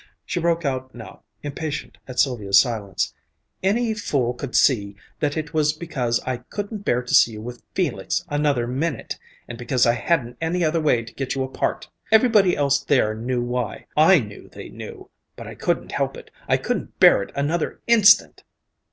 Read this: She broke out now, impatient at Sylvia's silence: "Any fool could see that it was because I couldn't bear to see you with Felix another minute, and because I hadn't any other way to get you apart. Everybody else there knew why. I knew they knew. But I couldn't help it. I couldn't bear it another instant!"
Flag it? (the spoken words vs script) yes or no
no